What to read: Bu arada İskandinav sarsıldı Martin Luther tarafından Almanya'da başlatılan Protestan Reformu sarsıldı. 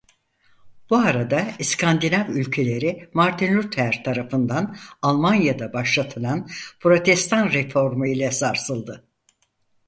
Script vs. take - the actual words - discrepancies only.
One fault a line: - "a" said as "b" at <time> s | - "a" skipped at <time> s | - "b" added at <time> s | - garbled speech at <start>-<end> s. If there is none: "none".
- "sarsıldı" said as "ülkeleri" at 2.3 s
- "ile" added at 8.1 s